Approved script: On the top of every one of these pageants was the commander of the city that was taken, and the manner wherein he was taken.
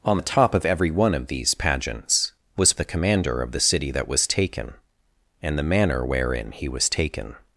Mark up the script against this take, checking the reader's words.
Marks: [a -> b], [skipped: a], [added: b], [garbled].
On the top of every one of these pageants was the commander of the city that was taken, and the manner wherein he was taken.